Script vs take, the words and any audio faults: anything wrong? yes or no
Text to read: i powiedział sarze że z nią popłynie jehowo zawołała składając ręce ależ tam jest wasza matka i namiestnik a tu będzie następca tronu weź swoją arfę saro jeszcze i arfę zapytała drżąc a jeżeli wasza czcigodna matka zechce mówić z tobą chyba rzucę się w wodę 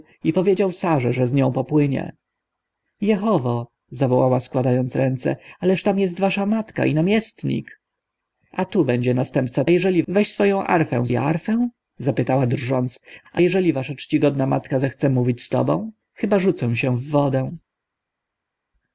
yes